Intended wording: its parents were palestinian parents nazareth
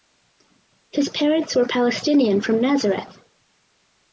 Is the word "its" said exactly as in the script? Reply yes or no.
no